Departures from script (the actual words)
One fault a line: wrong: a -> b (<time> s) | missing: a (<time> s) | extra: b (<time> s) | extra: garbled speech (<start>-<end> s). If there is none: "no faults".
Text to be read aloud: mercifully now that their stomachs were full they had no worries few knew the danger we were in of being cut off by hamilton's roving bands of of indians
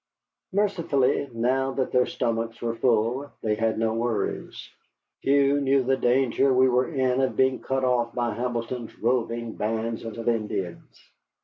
no faults